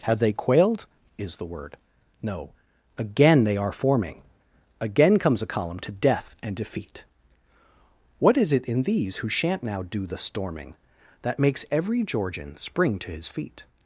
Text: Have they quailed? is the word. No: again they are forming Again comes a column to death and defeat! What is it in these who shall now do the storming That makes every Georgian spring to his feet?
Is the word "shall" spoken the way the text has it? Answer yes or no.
no